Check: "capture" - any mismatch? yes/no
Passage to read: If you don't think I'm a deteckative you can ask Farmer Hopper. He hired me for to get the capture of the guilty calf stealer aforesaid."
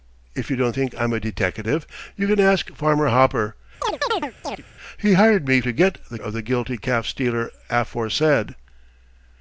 yes